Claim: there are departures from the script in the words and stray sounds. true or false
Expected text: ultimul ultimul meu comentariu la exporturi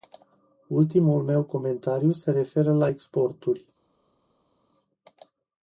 true